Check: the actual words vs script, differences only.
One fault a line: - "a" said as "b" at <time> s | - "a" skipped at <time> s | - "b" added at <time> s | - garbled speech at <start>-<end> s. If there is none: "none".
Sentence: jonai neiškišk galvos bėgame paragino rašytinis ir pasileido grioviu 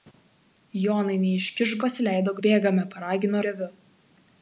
- "galvos" said as "pasileido" at 1.9 s
- "rašytinis ir pasileido" skipped at 3.4 s